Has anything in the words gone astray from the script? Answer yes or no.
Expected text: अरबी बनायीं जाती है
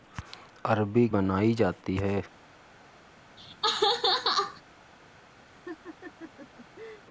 no